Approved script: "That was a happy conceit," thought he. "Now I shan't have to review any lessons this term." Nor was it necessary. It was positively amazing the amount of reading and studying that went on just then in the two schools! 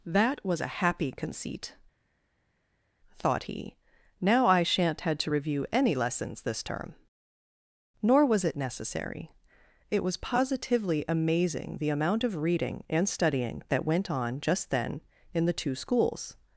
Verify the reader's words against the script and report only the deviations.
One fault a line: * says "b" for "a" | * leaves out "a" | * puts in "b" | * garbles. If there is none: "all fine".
* says "had" for "have"